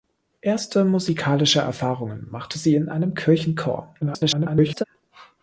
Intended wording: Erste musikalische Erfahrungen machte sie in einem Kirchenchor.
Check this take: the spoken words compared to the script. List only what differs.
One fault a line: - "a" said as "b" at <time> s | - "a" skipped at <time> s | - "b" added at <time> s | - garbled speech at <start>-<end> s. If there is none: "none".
- garbled speech at 4.0-4.8 s